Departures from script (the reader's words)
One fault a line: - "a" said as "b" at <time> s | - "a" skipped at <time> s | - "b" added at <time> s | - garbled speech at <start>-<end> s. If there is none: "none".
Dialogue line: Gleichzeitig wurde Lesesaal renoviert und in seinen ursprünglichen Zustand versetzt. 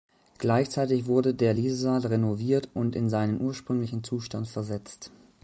- "der" added at 1.4 s